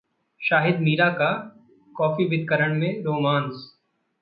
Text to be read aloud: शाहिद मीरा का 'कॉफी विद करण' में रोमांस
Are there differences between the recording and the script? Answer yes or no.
no